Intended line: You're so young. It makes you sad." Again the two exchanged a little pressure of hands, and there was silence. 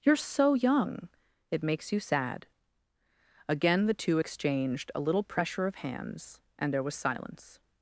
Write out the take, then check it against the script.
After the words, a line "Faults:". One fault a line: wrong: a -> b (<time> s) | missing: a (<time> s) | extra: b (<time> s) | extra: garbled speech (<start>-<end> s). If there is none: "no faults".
You're so young. It makes you sad." Again the two exchanged a little pressure of hands, and there was silence.
Faults:
no faults